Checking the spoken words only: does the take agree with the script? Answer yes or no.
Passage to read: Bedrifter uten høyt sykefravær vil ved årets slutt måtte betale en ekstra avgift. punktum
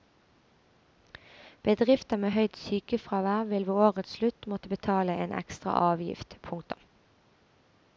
no